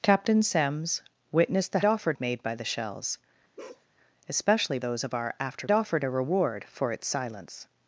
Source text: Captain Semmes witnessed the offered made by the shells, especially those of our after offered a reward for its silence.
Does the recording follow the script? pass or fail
pass